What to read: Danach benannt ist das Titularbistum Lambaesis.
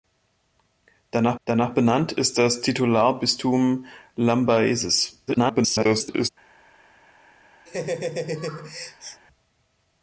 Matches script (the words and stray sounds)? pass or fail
fail